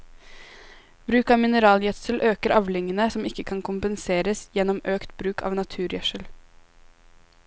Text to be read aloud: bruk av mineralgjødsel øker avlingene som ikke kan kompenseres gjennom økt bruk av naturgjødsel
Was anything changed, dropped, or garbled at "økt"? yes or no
no